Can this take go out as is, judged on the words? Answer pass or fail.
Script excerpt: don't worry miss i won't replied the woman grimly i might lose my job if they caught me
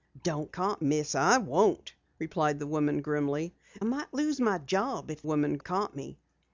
fail